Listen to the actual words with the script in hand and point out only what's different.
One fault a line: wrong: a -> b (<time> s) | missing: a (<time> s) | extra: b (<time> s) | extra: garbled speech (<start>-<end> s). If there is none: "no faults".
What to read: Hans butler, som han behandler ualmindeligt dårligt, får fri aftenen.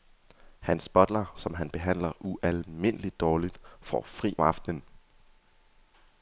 no faults